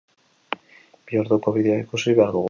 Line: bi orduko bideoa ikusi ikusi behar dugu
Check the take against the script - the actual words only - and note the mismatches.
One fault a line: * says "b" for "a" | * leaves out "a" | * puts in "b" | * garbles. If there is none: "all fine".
* leaves out "ikusi"